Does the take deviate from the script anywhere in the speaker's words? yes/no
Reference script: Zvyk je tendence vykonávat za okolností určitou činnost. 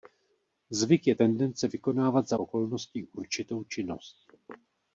no